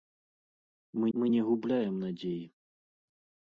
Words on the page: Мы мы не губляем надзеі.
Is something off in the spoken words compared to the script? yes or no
no